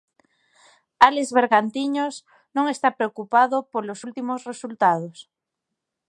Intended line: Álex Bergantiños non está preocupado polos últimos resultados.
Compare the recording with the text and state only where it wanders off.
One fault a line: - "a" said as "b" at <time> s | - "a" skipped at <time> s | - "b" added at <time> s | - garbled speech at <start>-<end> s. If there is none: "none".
none